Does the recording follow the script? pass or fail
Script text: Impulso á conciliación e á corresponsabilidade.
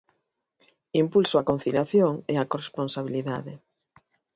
pass